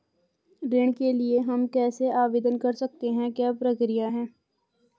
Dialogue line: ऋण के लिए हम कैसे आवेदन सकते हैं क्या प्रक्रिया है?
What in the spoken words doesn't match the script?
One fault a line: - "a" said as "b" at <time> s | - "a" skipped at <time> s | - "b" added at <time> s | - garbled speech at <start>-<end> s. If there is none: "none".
- "कर" added at 2.6 s